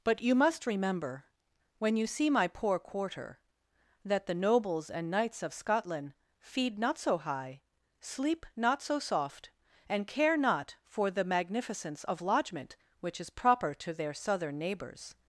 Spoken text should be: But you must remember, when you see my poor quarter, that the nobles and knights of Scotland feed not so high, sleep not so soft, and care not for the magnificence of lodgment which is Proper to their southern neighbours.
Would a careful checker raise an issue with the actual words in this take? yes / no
no